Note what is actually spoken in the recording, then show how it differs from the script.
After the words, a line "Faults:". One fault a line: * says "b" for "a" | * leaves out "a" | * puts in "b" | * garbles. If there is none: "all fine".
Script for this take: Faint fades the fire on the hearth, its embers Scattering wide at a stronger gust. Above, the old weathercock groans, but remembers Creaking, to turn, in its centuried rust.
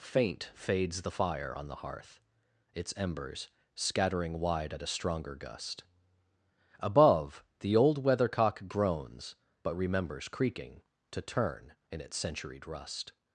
Faint fades the fire on the hearth, its embers Scattering wide at a stronger gust. Above, the old weathercock groans, but remembers Creaking, to turn, in its centuried rust.
Faults:
all fine